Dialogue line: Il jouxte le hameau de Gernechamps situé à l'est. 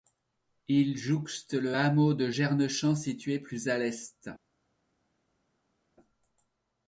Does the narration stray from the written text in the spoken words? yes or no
yes